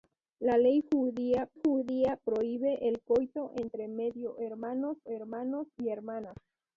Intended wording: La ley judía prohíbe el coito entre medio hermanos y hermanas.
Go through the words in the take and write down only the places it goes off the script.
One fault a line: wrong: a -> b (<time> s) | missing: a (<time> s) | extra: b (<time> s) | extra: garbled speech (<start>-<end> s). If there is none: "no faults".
extra: judía (1.6 s)
extra: hermanos (5.1 s)